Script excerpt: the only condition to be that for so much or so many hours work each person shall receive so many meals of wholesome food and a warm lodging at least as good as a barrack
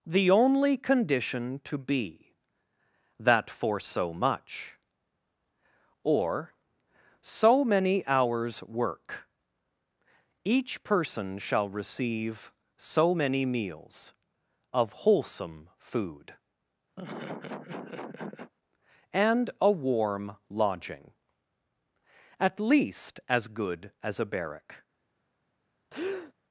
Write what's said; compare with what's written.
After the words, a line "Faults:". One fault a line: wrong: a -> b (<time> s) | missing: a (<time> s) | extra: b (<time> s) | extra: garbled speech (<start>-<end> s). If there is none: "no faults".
the only condition to be that for so much or so many hours work each person shall receive so many meals of wholesome food and a warm lodging at least as good as a barrack
Faults:
no faults